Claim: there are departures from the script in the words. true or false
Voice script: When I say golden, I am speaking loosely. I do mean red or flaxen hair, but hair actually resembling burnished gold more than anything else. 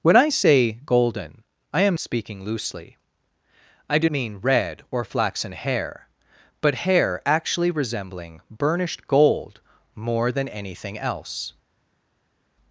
false